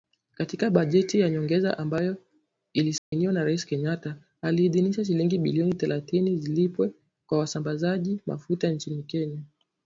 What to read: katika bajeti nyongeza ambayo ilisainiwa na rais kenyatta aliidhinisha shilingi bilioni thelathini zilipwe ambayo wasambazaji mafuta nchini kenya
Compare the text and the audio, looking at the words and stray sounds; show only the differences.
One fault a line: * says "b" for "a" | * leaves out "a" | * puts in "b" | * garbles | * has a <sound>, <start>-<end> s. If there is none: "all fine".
* puts in "ya"
* has a dropout, 3.0-3.1 s
* says "kwa" for "ambayo"